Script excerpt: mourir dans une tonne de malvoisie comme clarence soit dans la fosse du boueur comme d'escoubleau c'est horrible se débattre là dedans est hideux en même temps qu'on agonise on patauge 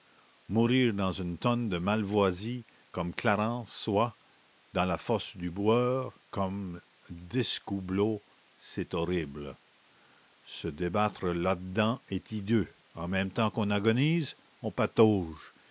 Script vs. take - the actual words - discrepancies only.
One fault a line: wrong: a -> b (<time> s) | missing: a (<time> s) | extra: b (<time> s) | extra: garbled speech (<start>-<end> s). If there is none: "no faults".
no faults